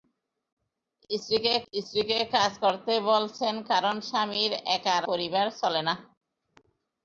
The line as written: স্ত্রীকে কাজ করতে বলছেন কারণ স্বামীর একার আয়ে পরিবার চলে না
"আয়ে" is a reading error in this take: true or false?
true